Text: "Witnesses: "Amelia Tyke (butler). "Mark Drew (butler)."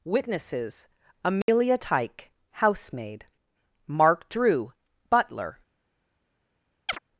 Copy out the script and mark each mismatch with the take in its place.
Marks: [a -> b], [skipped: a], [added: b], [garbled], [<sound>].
"Witnesses: "Amelia [dropout] Tyke [(butler). -> housemaid] "Mark Drew (butler)." [chirp]